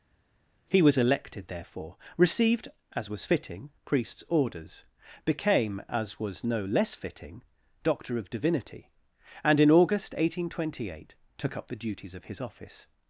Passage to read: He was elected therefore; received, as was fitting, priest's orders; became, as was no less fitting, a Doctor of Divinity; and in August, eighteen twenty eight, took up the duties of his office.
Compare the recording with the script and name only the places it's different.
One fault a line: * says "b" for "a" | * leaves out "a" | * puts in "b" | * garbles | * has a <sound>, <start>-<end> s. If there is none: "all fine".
* leaves out "a"